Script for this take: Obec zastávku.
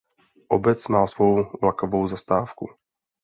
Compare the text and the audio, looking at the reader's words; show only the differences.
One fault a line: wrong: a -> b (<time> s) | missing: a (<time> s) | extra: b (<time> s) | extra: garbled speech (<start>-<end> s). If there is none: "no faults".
extra: má svou vlakovou (0.9 s)